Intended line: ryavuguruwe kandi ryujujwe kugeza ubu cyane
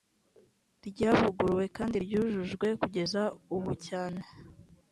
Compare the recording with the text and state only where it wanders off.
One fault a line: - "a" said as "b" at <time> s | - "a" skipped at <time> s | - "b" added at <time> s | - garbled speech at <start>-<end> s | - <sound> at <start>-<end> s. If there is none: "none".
none